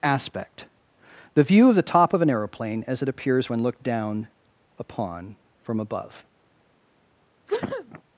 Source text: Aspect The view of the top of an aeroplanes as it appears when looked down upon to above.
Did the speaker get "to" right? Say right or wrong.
wrong